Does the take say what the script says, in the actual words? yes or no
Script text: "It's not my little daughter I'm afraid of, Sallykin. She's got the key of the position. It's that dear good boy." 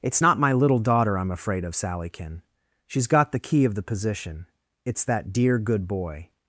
yes